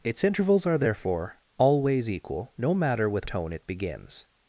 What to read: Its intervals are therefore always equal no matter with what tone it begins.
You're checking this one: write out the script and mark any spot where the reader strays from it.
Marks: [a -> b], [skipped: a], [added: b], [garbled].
Its intervals are therefore always equal no matter with [skipped: what] tone it begins.